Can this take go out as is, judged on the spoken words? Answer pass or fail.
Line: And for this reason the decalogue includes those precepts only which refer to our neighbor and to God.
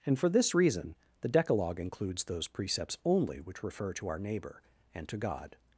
pass